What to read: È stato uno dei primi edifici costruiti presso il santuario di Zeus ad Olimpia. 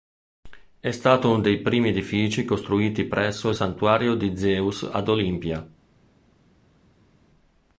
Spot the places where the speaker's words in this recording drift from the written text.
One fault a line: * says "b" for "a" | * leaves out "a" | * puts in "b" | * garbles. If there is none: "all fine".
all fine